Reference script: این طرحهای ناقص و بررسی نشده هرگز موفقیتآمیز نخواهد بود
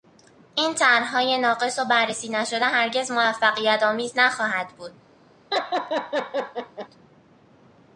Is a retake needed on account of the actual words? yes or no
no